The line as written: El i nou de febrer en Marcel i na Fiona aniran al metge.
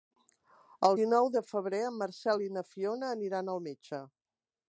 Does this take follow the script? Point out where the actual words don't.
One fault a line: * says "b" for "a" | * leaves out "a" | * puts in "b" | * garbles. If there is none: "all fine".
all fine